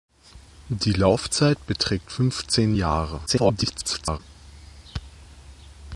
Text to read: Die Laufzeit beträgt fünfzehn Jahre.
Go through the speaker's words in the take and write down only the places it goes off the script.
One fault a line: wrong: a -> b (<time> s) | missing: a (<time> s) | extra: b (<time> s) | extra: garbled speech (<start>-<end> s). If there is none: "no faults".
extra: garbled speech (3.3-4.2 s)